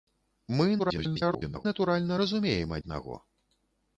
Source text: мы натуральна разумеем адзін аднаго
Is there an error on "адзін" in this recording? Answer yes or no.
yes